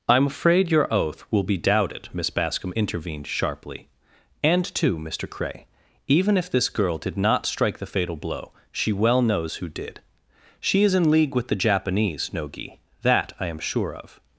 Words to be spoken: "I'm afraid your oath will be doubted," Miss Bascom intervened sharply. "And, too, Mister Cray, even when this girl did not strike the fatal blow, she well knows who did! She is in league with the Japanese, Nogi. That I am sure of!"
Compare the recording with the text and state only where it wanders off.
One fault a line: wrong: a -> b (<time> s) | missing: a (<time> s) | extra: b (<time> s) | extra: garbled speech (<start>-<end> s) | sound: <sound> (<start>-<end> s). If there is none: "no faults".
wrong: when -> if (6.4 s)